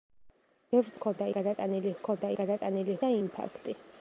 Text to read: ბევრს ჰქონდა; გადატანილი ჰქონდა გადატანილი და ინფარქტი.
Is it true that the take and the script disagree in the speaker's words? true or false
false